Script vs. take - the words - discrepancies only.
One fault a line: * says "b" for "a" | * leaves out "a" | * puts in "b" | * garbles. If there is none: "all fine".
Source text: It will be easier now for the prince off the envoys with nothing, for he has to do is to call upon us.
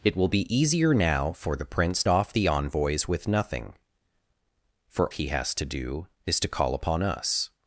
all fine